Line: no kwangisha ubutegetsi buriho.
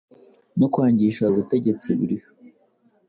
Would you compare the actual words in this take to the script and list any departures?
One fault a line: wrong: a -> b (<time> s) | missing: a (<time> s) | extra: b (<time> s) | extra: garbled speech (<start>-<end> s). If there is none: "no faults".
no faults